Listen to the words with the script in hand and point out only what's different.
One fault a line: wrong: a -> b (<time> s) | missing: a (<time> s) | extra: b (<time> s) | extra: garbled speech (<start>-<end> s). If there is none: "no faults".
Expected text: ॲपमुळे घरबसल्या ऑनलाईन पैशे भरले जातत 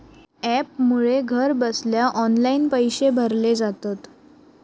no faults